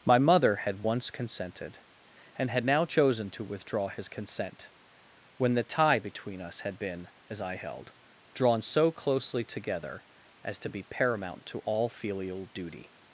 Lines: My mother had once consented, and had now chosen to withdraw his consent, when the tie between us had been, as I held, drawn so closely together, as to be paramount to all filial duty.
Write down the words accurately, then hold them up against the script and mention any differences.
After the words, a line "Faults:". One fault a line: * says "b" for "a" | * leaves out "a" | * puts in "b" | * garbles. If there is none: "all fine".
My mother had once consented, and had now chosen to withdraw his consent, when the tie between us had been, as I held, drawn so closely together, as to be paramount to all filial duty.
Faults:
all fine